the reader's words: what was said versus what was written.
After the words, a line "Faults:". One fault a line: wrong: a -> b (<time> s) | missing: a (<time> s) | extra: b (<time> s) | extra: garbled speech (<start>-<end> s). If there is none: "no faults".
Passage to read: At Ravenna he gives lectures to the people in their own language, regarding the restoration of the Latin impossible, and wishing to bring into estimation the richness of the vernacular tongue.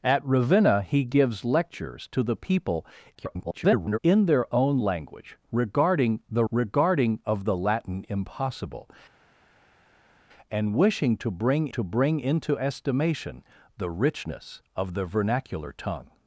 At Ravenna he gives lectures to the people [garbled] in their own language, regarding the regarding of the Latin impossible, and wishing to bring to bring into estimation the richness of the vernacular tongue.
Faults:
extra: garbled speech (3.1-4.0 s)
wrong: restoration -> regarding (6.5 s)
extra: to bring (11.7 s)